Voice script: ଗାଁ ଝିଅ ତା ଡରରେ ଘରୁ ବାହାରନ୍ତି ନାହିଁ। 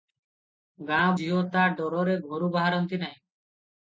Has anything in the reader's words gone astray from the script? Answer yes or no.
no